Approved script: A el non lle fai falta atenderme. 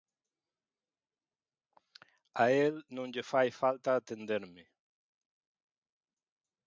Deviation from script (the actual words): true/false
false